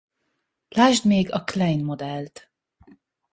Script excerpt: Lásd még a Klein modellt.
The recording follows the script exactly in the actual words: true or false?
true